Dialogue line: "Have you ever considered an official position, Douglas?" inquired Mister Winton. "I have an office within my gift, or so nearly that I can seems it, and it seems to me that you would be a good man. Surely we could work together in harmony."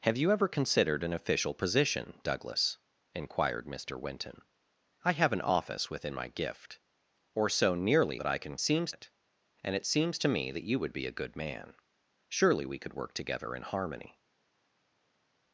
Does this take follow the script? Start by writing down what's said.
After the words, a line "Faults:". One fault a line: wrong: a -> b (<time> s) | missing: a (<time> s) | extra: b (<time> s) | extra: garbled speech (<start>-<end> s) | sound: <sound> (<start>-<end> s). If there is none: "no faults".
"Have you ever considered an official position, Douglas?" inquired Mister Winton. "I have an office within my gift, or so nearly that I can seems it, and it seems to me that you would be a good man. Surely we could work together in harmony."
Faults:
no faults